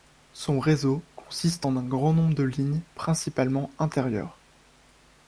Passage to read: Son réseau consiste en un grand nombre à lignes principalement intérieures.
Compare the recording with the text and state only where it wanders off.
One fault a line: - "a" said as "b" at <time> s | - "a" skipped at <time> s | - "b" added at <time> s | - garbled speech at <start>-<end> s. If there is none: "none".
- "à" said as "de" at 2.3 s